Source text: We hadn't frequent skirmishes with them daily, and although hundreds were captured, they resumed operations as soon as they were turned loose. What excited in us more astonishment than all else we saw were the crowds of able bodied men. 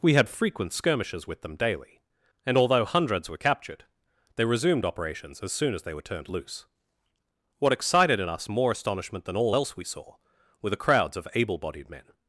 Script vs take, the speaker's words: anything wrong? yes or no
yes